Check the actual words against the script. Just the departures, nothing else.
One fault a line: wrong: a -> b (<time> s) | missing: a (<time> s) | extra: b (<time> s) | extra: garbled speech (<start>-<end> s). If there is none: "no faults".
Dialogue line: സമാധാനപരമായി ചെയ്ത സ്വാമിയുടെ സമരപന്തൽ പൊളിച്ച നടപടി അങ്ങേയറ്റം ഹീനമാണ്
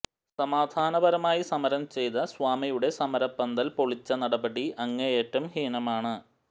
extra: സമരം (1.5 s)